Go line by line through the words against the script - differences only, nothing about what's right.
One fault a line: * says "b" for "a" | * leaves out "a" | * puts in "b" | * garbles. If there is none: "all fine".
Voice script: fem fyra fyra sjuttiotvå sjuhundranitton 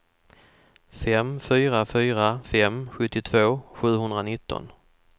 * puts in "fem"